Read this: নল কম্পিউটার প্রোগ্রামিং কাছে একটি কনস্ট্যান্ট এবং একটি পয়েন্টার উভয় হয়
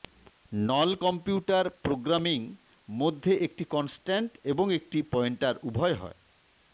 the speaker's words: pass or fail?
fail